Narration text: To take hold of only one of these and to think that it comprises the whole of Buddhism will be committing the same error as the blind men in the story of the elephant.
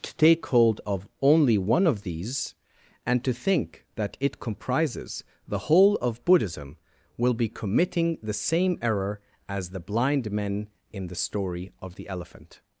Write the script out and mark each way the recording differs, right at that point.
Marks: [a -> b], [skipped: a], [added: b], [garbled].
To take hold of only one of these and to think that it comprises the whole of Buddhism will be committing the same error as the blind men in the story of the elephant.